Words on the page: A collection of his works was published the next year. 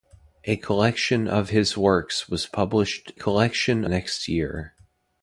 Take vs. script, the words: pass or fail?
fail